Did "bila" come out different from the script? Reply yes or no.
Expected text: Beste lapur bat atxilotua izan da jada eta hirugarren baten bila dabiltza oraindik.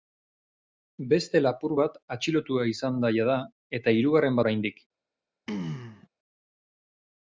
yes